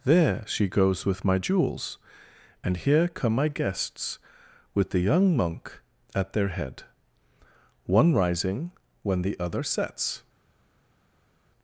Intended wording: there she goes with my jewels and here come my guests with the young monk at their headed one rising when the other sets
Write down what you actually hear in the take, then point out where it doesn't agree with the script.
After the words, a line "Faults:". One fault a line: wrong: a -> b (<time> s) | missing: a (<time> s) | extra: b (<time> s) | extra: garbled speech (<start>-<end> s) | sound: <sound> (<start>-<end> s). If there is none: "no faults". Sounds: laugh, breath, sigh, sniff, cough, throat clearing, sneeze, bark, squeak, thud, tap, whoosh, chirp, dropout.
there she goes with my jewels and here come my guests with the young monk at their head one rising when the other sets
Faults:
wrong: headed -> head (6.5 s)